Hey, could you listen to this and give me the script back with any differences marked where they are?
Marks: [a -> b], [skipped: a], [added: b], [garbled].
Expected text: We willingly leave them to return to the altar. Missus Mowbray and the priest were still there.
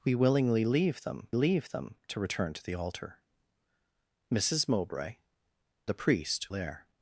We willingly leave them [added: leave them] to return to the altar. Missus Mowbray [skipped: and] the priest [skipped: were still] there.